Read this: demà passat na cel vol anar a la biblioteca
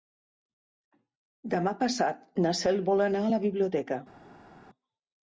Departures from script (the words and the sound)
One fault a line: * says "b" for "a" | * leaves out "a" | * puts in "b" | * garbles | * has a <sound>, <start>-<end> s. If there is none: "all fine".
all fine